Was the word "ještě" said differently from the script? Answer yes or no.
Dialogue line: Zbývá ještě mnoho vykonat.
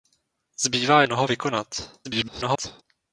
yes